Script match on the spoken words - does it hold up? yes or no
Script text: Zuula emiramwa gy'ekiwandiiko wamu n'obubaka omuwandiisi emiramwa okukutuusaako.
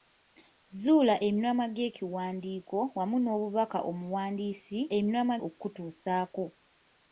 yes